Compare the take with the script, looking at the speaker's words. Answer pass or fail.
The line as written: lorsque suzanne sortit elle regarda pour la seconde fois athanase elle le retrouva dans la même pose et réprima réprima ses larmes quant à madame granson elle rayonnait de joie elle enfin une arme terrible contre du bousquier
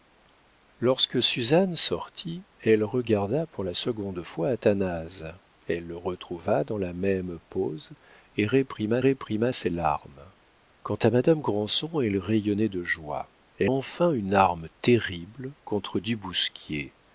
pass